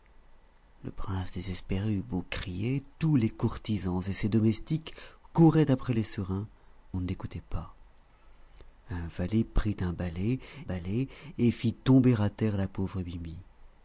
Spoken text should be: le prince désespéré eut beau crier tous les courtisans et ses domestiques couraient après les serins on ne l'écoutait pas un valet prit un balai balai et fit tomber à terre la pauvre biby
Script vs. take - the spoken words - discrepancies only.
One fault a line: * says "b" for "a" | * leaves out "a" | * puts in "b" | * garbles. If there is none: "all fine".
all fine